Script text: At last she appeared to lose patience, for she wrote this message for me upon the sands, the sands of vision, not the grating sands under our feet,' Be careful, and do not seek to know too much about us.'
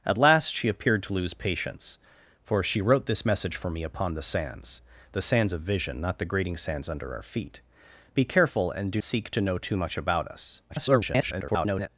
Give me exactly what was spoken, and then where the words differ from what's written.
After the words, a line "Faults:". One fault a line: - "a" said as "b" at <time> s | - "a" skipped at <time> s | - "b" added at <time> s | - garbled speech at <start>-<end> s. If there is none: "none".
At last she appeared to lose patience, for she wrote this message for me upon the sands, the sands of vision, not the grating sands under our feet,' Be careful, and do seek to know too much about us.' [garbled]
Faults:
- "not" skipped at 9.0 s
- garbled speech at 10.7-11.9 s